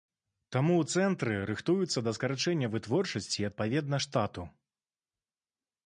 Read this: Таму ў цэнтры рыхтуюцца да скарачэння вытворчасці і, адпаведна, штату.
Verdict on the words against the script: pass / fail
pass